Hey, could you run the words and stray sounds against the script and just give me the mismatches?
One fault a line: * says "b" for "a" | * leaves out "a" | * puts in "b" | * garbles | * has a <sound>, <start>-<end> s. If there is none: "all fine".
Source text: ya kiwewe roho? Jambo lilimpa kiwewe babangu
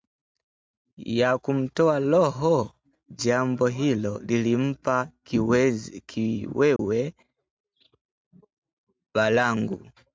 * says "kumtoa" for "kiwewe"
* puts in "hilo"
* has a dropout, 6.8-6.8 s